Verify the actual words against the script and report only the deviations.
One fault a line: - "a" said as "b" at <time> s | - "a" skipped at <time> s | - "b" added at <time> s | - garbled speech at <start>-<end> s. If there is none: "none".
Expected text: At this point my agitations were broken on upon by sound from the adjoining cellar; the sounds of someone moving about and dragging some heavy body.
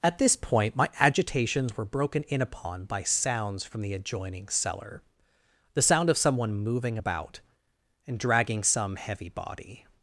- "on" said as "in" at 2.2 s
- "sound" said as "sounds" at 3.0 s
- "sounds" said as "sound" at 5.8 s